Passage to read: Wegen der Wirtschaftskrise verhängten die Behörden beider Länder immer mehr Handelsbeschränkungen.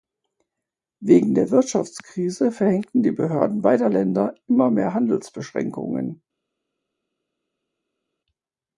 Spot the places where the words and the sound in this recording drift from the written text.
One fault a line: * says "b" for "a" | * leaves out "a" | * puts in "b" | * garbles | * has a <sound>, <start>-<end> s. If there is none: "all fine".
all fine